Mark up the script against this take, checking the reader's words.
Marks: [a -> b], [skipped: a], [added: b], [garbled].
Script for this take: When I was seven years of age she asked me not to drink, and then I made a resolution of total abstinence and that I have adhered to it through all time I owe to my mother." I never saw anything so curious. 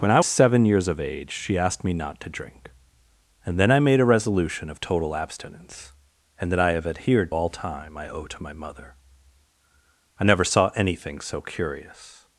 When I [skipped: was] seven years of age she asked me not to drink, and then I made a resolution of total abstinence and that I have adhered [skipped: to it through] all time I owe to my mother." I never saw anything so curious.